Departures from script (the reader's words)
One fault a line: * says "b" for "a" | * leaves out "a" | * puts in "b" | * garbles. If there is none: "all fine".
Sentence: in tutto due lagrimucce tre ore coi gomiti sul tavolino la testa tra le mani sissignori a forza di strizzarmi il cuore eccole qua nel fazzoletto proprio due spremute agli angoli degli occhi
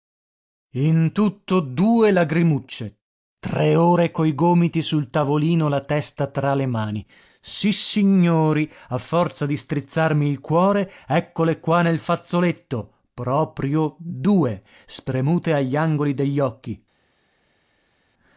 all fine